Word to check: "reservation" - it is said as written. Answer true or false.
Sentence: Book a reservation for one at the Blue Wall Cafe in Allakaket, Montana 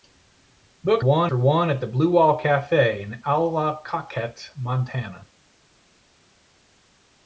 false